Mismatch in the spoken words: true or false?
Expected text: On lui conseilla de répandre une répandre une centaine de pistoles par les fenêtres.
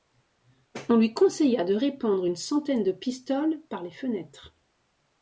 true